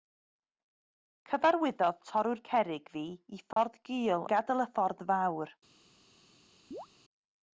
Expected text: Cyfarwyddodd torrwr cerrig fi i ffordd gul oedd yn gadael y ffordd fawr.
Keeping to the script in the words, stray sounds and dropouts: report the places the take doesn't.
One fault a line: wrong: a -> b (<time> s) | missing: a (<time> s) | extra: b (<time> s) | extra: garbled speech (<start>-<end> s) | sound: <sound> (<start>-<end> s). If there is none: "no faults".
sound: dropout (3.5-3.6 s)
missing: oedd (4.3 s)
sound: chirp (6.7-6.9 s)